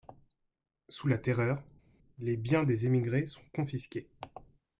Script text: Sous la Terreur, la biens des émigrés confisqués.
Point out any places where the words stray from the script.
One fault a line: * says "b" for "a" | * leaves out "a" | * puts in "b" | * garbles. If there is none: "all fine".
* says "les" for "la"
* puts in "sont"